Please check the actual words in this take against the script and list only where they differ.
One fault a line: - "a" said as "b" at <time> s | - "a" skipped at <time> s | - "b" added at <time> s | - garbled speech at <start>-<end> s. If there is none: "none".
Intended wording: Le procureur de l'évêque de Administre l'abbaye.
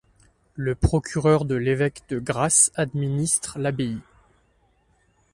- "Grasse" added at 2.2 s